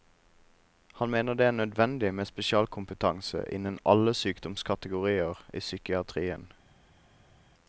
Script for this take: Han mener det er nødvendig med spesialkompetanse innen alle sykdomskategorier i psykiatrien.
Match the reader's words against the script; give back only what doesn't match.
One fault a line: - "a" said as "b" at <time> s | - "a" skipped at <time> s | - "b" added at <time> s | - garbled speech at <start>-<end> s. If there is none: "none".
none